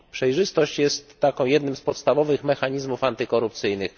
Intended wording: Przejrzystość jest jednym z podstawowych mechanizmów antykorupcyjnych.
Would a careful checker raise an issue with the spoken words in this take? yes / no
no